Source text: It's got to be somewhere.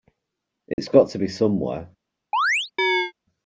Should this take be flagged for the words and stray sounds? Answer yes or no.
yes